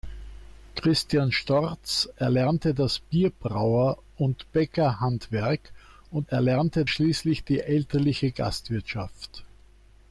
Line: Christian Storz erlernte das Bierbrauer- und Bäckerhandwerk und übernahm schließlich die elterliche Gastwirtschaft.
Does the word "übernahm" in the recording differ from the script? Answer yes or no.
yes